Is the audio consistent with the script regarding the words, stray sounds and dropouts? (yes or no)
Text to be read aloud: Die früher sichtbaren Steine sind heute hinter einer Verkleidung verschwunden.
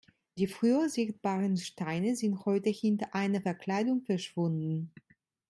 yes